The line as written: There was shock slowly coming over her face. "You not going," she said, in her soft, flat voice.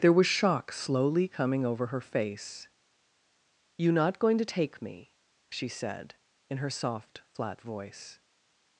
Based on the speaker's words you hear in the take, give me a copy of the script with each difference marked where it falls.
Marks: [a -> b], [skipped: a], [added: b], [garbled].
There was shock slowly coming over her face. "You not going," [added: to take me] she said, in her soft, flat voice.